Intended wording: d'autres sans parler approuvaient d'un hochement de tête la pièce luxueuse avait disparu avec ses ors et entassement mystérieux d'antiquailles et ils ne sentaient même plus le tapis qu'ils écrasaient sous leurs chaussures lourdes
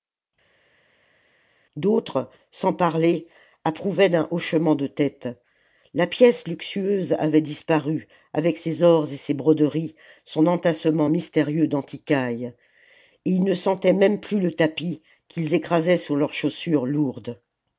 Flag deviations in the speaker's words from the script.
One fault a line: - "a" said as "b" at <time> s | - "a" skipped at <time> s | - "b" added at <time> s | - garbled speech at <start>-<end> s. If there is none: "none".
- "ses broderies son" added at 9.2 s